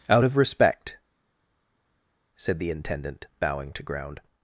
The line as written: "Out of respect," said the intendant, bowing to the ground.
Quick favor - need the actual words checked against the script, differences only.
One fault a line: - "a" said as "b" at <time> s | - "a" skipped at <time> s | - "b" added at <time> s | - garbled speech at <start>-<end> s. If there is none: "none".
- "the" skipped at 3.8 s